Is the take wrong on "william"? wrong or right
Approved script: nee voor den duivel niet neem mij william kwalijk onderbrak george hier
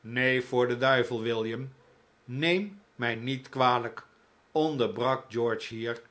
wrong